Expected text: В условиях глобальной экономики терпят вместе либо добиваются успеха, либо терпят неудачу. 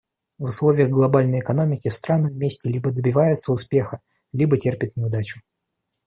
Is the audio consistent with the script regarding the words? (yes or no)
no